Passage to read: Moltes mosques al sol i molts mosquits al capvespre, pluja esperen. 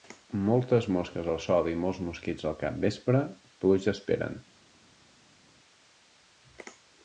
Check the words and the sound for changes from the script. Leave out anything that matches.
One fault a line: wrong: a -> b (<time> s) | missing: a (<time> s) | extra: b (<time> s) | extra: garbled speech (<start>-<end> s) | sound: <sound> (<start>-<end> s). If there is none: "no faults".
no faults